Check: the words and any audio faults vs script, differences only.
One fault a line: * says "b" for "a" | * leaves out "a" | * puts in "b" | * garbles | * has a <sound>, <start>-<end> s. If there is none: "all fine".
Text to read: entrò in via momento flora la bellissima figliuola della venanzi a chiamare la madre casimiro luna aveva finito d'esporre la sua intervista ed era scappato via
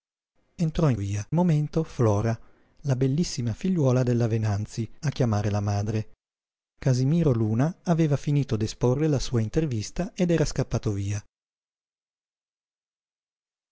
all fine